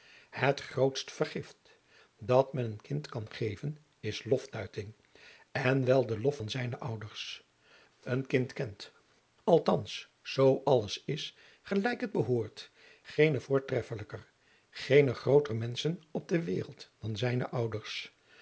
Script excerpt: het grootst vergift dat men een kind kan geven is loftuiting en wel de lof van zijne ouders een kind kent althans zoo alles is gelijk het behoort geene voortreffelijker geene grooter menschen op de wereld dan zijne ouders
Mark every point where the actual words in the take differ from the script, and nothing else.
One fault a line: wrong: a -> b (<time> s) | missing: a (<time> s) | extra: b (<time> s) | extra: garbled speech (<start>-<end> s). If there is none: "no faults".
no faults